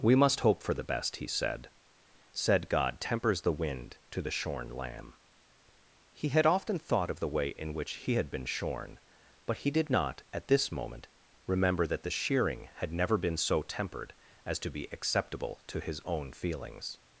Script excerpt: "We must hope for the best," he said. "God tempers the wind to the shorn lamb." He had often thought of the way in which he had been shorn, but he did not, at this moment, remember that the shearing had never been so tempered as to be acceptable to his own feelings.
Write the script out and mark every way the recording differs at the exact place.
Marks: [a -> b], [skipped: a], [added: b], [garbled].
"We must hope for the best," he said. [added: said] "God tempers the wind to the shorn lamb." He had often thought of the way in which he had been shorn, but he did not, at this moment, remember that the shearing had never been so tempered as to be acceptable to his own feelings.